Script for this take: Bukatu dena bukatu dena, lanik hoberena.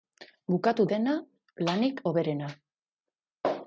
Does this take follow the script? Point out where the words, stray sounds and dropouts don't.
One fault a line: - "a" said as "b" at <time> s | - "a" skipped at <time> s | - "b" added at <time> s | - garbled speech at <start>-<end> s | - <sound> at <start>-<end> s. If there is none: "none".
- "bukatu dena" skipped at 1.1 s